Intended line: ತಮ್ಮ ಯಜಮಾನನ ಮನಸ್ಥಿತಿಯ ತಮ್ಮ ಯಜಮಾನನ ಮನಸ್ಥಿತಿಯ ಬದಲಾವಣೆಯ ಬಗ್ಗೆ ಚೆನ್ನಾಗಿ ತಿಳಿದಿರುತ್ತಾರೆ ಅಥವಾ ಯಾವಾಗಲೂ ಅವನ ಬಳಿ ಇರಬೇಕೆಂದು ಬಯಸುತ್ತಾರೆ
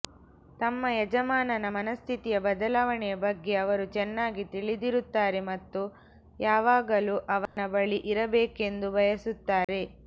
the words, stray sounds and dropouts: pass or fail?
fail